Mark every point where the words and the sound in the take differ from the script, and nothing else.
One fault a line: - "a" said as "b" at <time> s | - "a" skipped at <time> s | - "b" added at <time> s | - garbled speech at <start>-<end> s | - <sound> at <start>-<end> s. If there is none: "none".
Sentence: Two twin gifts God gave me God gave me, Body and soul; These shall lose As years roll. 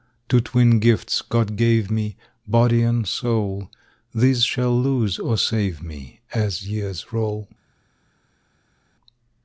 - "God gave me" skipped at 2.1 s
- "or save me" added at 5.2 s